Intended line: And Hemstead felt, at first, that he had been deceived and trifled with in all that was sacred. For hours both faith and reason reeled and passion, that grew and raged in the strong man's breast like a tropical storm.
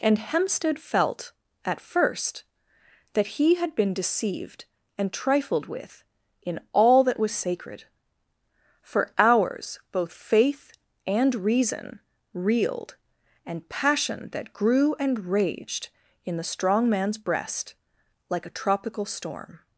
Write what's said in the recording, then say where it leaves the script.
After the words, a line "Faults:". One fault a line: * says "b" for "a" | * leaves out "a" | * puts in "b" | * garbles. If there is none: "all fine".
And Hemstead felt, at first, that he had been deceived and trifled with in all that was sacred. For hours both faith and reason reeled and passion, that grew and raged in the strong man's breast like a tropical storm.
Faults:
all fine